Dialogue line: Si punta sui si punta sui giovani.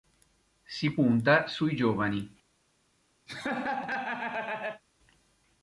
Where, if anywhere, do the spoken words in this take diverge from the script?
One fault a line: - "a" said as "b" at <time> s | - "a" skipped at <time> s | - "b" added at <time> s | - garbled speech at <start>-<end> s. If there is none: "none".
- "si punta sui" skipped at 1.7 s